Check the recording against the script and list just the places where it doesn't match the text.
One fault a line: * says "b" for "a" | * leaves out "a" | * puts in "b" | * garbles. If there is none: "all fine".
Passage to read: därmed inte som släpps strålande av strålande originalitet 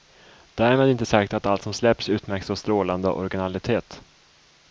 * puts in "sagt att allt"
* says "utmärks" for "strålande"